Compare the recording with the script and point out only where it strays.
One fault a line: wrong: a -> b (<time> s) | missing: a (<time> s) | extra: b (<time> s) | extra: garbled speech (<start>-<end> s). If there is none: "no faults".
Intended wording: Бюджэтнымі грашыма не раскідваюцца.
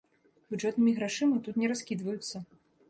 extra: тут (1.5 s)